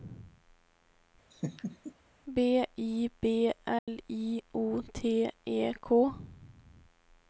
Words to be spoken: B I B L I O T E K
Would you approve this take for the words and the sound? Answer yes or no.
no